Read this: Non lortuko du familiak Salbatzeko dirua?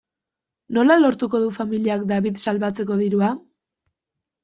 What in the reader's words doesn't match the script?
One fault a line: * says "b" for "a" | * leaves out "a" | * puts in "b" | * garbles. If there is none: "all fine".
* says "Nola" for "Non"
* puts in "David"